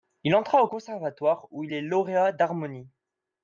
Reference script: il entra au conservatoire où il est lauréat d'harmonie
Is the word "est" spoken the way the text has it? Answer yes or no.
yes